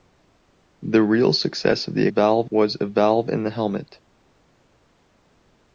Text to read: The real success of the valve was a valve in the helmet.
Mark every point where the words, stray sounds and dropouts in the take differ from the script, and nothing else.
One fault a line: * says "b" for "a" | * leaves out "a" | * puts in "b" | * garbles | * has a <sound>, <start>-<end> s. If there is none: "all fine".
all fine